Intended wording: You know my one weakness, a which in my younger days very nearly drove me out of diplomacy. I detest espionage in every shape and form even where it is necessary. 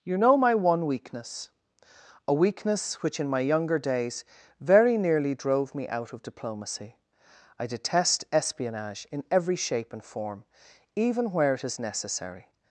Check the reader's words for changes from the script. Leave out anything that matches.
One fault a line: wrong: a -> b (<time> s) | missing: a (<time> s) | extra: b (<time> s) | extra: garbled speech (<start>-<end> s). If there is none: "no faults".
extra: weakness (2.3 s)